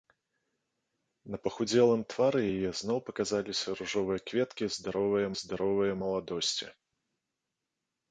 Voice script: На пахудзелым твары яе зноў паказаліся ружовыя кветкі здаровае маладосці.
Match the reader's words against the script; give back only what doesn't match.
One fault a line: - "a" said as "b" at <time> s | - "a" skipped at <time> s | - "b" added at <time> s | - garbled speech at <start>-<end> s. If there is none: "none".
- "здаровае" added at 5.4 s